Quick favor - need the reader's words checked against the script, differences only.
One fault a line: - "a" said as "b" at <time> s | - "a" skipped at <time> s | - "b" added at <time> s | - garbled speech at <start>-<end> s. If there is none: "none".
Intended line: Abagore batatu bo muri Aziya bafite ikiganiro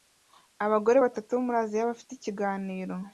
none